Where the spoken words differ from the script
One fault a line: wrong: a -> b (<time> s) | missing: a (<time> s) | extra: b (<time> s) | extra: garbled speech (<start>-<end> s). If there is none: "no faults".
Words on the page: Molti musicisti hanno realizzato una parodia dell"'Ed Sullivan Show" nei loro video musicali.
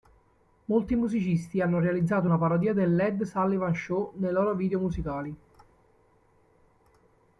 no faults